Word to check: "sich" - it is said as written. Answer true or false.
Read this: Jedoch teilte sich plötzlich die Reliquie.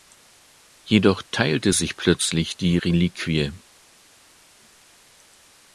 true